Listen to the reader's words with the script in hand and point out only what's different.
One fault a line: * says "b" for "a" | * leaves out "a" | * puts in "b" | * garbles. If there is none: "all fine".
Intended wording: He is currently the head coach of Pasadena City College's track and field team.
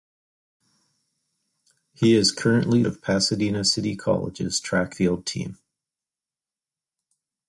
* leaves out "the head coach"
* leaves out "and"